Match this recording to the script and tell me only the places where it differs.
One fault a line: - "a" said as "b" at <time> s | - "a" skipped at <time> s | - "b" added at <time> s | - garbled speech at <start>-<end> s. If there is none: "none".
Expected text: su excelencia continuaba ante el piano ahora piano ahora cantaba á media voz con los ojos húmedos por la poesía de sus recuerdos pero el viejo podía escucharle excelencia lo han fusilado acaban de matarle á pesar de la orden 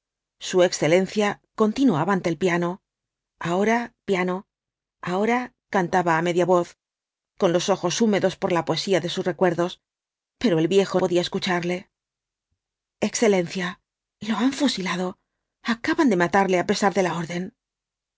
none